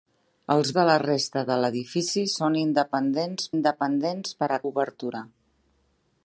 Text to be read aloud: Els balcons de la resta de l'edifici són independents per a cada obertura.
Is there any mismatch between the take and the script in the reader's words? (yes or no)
yes